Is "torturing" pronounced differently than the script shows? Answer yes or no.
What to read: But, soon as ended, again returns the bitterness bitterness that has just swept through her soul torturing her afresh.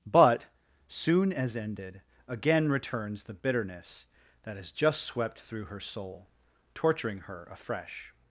no